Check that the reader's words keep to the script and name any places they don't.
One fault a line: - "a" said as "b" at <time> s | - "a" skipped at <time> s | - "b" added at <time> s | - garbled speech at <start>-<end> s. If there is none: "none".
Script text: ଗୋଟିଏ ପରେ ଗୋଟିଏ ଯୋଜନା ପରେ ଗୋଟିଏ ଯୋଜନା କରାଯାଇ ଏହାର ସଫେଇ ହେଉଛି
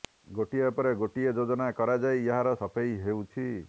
- "ପରେ ଗୋଟିଏ ଯୋଜନା" skipped at 1.7 s